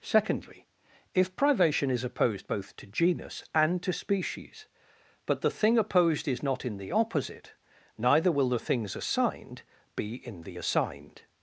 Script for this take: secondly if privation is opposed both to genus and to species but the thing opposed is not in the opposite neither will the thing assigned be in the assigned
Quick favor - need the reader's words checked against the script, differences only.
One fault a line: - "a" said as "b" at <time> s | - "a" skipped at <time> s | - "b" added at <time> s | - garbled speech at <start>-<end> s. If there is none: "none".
- "thing" said as "things" at 8.6 s